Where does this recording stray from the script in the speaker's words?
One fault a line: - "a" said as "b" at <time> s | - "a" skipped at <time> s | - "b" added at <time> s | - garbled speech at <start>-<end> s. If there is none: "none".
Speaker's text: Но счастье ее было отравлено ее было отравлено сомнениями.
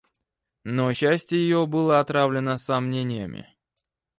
- "ее было отравлено" skipped at 2.6 s